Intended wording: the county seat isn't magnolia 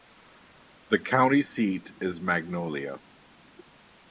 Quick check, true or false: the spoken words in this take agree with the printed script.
false